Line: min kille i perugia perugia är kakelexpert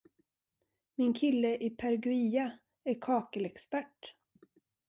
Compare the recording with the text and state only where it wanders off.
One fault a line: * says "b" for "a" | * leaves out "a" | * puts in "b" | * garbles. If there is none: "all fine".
* leaves out "perugia"